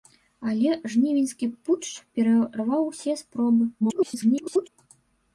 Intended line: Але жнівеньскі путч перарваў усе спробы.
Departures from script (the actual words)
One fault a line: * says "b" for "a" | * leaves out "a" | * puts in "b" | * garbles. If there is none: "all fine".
* garbles